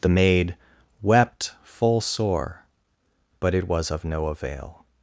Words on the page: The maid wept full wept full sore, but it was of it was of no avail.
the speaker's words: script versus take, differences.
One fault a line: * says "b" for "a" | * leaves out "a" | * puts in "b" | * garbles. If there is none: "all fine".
* leaves out "wept full"
* leaves out "it was of"